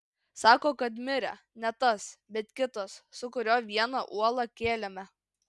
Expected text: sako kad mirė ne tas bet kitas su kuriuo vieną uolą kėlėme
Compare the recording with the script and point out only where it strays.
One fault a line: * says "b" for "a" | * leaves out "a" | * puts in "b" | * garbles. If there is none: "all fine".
all fine